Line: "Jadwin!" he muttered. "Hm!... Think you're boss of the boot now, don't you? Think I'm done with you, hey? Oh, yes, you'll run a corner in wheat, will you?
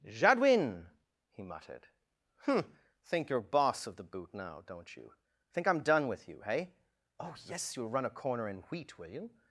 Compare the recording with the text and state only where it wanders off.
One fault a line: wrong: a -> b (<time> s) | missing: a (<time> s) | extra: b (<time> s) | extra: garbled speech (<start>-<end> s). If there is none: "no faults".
no faults